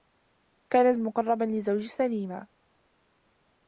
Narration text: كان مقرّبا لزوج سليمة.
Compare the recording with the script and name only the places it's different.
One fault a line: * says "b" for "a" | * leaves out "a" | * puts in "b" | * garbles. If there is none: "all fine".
all fine